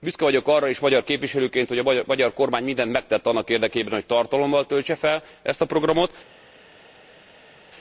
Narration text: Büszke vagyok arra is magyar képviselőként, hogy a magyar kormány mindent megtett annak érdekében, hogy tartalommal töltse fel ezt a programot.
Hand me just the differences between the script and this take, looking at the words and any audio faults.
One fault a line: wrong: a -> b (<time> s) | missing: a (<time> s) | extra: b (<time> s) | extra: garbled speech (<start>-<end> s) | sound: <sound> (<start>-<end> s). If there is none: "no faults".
no faults